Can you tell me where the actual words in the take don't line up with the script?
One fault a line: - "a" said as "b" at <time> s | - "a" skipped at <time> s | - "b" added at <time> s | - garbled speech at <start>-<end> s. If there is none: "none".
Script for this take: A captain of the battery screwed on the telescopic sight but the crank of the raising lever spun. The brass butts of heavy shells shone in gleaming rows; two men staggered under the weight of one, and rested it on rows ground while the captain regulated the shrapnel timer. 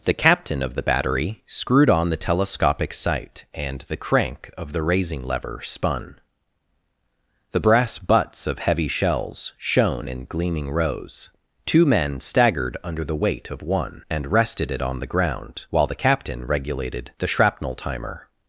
- "A" said as "The" at 0.0 s
- "but" said as "and" at 3.5 s
- "rows" said as "the" at 15.0 s